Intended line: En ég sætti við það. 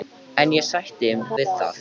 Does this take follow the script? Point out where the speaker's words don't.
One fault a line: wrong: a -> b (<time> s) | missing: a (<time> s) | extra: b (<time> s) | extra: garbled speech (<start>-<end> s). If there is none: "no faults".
no faults